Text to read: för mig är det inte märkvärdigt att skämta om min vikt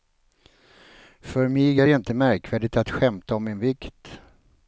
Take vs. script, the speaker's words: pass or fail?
pass